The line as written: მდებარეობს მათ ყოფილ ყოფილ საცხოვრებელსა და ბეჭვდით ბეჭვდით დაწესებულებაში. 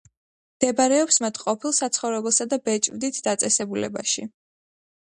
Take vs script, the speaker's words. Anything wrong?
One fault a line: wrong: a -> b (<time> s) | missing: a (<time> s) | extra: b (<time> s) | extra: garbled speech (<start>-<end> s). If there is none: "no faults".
missing: ყოფილ (1.7 s)
missing: ბეჭვდით (3.2 s)